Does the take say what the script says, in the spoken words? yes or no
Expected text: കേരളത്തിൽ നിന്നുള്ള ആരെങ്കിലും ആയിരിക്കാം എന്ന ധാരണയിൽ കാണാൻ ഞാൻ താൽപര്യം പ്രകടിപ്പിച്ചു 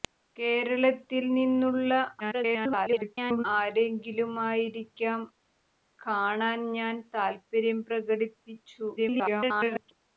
no